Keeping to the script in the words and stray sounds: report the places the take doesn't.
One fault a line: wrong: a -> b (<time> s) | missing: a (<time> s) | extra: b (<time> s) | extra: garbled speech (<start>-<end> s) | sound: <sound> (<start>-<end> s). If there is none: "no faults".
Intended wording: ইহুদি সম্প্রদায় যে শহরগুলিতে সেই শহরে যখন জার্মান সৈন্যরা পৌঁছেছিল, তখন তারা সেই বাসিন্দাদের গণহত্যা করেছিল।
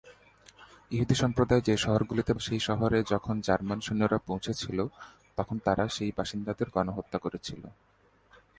no faults